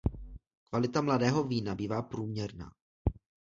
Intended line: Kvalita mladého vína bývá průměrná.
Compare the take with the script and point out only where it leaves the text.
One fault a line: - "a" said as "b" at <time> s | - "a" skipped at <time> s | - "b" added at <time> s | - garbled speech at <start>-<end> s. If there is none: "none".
none